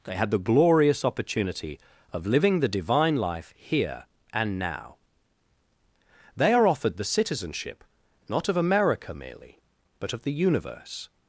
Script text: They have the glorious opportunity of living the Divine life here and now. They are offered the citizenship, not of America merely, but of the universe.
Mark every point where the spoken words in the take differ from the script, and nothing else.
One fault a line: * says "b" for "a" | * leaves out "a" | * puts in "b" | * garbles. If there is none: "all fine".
* says "had" for "have"